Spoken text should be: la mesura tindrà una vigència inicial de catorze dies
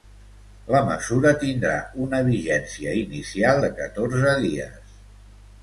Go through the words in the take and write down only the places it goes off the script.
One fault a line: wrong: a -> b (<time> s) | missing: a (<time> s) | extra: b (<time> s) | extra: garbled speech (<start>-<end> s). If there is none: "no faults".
no faults